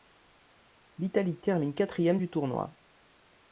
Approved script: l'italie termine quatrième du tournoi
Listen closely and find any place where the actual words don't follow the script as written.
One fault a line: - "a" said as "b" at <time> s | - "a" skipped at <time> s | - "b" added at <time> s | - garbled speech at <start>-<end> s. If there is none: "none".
none